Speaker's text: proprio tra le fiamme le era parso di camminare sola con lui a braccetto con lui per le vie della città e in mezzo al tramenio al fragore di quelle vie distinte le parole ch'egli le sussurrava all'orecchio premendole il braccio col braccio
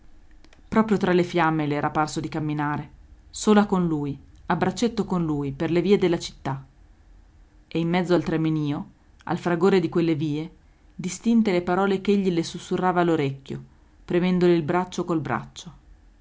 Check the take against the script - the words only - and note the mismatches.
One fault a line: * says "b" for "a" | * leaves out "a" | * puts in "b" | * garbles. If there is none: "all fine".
all fine